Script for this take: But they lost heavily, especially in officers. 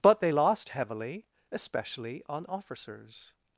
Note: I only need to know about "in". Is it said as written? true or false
false